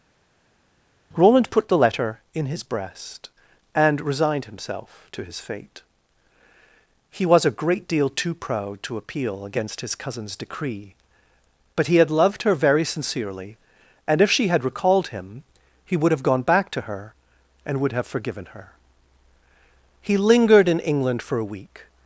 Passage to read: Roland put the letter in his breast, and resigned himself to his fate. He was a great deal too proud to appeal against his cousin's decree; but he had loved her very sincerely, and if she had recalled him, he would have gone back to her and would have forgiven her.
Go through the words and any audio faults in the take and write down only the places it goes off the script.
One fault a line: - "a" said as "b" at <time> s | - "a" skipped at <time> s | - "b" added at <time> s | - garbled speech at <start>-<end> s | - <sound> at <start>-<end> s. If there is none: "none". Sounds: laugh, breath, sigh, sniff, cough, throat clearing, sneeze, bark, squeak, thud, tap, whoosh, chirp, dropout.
- "He lingered in England for a week" added at 20.0 s